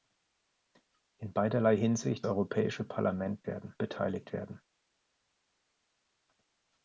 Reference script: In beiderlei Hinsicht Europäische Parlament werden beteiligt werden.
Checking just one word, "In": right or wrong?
right